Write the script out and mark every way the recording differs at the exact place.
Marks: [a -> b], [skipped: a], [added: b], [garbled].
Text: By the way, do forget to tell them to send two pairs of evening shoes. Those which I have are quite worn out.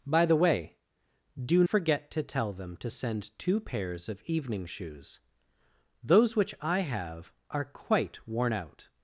By the way, do forget to tell them to send two pairs of evening shoes. Those which I have are quite worn out.